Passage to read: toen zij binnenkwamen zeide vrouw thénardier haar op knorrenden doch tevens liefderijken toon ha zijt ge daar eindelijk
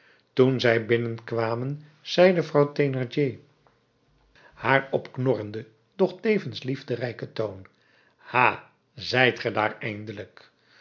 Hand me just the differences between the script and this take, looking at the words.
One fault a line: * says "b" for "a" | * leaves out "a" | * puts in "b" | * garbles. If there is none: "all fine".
all fine